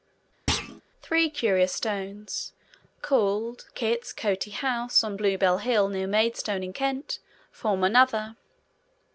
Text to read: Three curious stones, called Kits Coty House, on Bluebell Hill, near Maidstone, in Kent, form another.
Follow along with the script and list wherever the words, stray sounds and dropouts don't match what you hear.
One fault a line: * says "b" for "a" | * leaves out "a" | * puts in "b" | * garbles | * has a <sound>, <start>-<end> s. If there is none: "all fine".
* has a thud, 0.5-0.8 s